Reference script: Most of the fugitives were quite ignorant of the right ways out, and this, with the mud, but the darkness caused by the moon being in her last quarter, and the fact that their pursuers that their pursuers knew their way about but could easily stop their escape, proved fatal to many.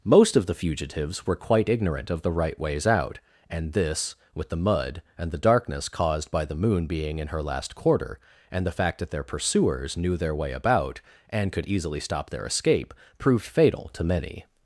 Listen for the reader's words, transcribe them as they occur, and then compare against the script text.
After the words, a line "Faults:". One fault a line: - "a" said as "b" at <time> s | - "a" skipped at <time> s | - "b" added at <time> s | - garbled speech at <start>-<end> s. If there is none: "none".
Most of the fugitives were quite ignorant of the right ways out, and this, with the mud, and the darkness caused by the moon being in her last quarter, and the fact that their pursuers knew their way about and could easily stop their escape, proved fatal to many.
Faults:
- "but" said as "and" at 5.2 s
- "that their pursuers" skipped at 10.0 s
- "but" said as "and" at 11.3 s